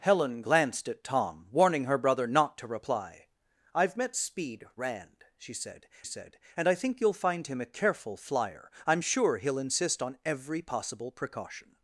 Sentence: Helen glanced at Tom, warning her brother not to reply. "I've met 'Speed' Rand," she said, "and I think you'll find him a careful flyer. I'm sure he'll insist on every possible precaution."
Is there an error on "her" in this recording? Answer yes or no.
no